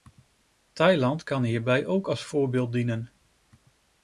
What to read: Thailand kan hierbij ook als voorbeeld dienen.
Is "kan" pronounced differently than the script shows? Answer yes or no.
no